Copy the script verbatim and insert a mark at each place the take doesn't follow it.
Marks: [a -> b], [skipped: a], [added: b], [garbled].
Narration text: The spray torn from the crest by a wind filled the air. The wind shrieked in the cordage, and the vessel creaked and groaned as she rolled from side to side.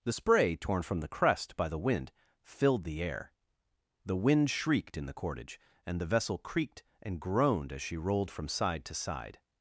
The spray torn from the crest by [a -> the] wind filled the air. The wind shrieked in the cordage, and the vessel creaked and groaned as she rolled from side to side.